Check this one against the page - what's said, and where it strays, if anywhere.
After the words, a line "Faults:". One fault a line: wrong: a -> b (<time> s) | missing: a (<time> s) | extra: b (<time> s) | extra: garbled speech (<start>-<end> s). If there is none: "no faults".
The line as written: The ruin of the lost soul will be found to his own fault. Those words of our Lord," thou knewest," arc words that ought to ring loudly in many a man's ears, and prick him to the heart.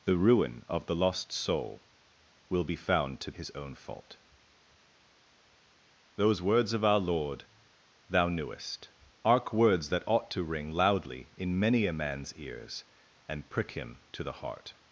The ruin of the lost soul will be found to his own fault. Those words of our Lord," thou knewest," arc words that ought to ring loudly in many a man's ears, and prick him to the heart.
Faults:
no faults